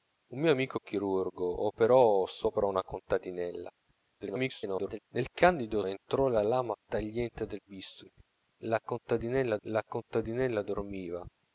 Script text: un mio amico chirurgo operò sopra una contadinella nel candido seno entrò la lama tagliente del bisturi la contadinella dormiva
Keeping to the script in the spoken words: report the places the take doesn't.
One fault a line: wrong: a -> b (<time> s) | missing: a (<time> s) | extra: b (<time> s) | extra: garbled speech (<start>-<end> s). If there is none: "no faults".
extra: garbled speech (4.2-5.0 s)
missing: seno (5.8 s)
extra: la contadinella (9.7 s)